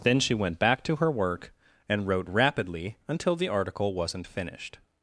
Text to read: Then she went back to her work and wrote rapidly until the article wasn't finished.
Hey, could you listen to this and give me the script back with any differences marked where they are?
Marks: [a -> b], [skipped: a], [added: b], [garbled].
Then she went back to her work and wrote rapidly until the article wasn't finished.